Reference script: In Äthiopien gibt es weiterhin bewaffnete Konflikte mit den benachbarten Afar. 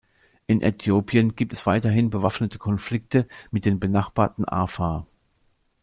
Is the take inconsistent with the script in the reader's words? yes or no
no